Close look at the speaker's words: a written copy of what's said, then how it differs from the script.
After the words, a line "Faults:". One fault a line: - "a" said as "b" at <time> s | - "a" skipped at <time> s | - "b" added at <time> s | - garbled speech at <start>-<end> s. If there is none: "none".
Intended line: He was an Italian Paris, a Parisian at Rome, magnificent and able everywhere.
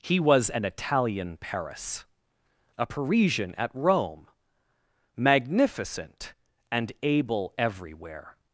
He was an Italian Paris, a Parisian at Rome, magnificent and able everywhere.
Faults:
none